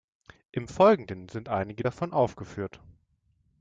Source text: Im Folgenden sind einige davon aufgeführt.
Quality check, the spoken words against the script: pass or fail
pass